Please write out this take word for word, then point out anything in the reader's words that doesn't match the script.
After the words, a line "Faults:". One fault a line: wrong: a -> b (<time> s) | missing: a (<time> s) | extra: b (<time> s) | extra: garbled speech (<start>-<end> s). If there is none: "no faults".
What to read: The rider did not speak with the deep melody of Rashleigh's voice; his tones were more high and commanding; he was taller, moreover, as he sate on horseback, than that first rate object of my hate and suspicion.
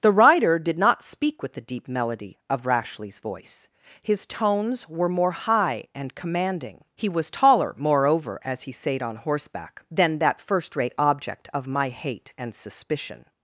The rider did not speak with the deep melody of Rashleigh's voice; his tones were more high and commanding; he was taller, moreover, as he sate on horseback, than that first rate object of my hate and suspicion.
Faults:
no faults